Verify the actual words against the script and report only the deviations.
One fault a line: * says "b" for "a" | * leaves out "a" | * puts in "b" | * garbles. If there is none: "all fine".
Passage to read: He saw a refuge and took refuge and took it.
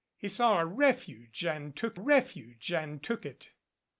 all fine